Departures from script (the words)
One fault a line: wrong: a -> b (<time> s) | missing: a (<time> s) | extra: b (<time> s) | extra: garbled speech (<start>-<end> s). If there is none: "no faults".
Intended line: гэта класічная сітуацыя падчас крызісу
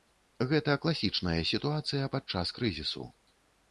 no faults